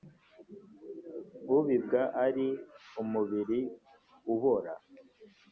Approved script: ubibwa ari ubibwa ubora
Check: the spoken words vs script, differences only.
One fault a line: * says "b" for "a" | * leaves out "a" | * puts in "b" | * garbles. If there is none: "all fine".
* says "umubiri" for "ubibwa"